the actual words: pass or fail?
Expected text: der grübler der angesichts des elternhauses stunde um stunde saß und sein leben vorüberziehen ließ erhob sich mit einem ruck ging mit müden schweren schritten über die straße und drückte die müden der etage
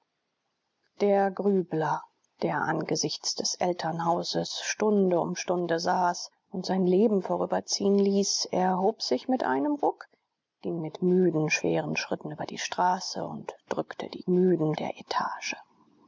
pass